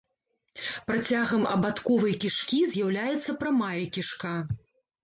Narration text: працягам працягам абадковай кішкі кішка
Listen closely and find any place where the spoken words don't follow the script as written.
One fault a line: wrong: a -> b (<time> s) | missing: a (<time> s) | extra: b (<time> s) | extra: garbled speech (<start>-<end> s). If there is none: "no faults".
missing: працягам (1.4 s)
extra: з'яўляецца прамая (2.8 s)